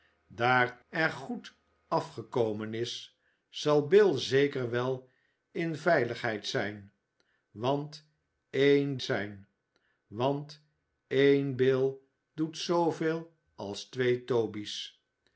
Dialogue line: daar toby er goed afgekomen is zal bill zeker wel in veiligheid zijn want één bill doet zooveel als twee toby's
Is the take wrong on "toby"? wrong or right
wrong